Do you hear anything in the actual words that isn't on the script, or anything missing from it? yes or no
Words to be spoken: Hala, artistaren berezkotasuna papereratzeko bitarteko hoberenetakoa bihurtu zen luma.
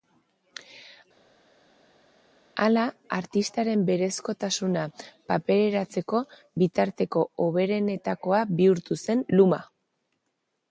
no